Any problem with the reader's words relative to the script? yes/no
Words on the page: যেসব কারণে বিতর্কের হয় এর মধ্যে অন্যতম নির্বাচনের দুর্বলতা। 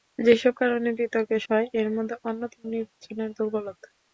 no